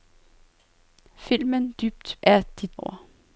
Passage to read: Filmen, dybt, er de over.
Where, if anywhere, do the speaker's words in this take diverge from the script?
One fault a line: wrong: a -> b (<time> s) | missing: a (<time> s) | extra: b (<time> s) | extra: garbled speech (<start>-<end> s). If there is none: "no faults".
no faults